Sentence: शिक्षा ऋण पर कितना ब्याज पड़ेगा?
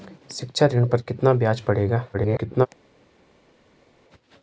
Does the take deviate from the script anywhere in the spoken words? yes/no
yes